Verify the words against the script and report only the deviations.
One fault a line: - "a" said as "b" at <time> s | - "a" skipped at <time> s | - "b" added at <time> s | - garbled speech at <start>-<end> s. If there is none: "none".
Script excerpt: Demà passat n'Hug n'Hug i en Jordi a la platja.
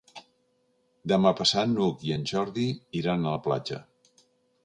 - "n'Hug" skipped at 2.1 s
- "iran" added at 3.0 s